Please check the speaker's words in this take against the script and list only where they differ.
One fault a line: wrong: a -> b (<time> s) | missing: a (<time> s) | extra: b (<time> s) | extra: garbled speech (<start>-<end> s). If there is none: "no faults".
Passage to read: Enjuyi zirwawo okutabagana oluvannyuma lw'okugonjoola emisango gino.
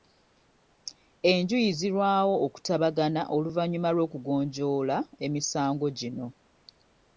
no faults